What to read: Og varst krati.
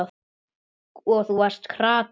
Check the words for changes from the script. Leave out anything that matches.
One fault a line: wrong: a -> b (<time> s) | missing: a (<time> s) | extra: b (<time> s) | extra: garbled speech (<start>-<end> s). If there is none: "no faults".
extra: þú (1.3 s)